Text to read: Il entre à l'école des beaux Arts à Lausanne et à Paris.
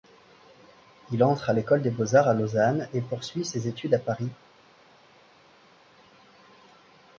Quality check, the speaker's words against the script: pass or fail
fail